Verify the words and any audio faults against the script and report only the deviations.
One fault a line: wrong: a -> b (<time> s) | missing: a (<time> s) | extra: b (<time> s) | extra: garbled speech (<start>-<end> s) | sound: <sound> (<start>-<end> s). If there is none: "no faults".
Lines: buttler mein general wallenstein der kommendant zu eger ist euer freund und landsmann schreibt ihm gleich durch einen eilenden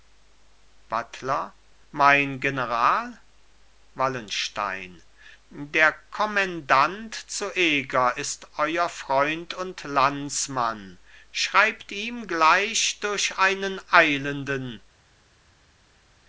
no faults